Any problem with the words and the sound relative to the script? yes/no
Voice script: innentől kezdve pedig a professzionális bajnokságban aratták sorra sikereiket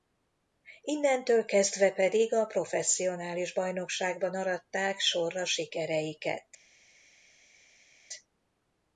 no